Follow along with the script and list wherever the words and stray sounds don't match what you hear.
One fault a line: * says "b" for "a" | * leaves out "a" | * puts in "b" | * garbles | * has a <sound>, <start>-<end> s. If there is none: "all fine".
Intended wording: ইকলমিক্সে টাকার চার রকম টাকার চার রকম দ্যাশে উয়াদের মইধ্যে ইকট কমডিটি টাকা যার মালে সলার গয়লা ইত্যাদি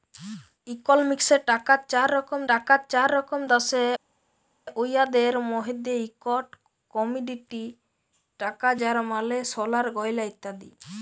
all fine